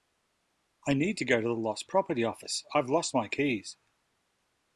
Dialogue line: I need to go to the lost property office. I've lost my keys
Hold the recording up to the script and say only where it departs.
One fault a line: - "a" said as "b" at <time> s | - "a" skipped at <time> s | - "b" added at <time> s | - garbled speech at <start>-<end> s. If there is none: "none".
none